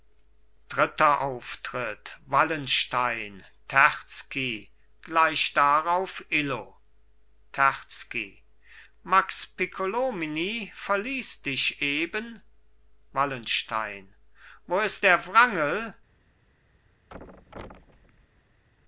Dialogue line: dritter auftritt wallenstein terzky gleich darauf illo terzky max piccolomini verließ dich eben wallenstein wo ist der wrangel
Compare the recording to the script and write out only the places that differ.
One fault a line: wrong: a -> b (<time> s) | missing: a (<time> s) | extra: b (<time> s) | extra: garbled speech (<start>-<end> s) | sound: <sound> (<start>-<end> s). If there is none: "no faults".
sound: thud (17.1-18.6 s)